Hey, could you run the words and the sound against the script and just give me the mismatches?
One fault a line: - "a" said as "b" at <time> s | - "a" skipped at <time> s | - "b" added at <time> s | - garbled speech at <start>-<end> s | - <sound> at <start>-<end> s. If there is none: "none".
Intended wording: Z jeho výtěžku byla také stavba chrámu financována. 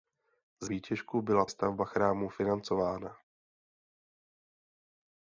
- "jeho" skipped at 0.7 s
- "také" skipped at 1.5 s